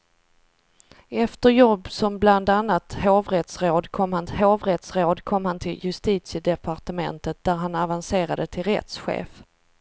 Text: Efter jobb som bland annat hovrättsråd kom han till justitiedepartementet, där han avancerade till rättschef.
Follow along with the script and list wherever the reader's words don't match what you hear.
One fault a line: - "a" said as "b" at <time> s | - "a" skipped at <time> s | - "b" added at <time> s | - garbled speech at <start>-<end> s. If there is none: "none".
- "hovrättsråd kom han" added at 4.3 s